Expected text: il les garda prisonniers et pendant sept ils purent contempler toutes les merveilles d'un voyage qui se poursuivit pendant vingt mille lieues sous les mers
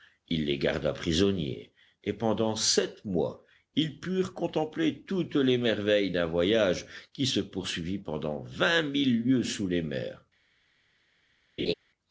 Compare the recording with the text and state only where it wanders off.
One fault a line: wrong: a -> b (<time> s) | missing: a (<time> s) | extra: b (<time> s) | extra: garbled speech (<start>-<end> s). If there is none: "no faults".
extra: mois (3.0 s)